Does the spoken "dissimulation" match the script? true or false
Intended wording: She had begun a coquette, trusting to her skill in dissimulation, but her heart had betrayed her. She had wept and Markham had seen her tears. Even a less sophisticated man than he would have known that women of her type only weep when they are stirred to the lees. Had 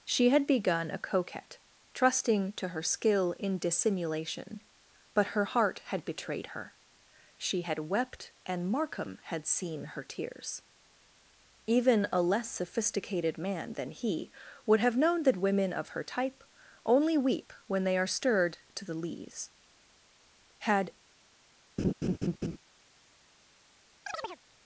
true